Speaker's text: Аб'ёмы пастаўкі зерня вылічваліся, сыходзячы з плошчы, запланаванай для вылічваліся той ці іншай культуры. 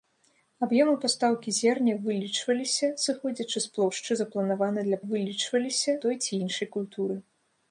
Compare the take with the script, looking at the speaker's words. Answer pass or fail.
pass